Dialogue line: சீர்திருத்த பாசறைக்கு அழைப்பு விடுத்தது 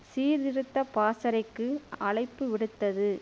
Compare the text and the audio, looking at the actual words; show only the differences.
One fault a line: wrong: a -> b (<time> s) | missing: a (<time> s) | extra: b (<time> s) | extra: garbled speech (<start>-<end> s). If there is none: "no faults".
no faults